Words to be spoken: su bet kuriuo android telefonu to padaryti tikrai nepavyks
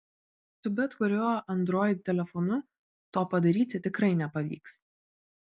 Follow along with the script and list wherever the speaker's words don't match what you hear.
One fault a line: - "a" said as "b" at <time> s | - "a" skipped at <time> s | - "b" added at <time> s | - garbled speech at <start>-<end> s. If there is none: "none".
none